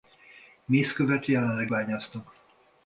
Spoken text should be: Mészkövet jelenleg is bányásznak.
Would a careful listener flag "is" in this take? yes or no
yes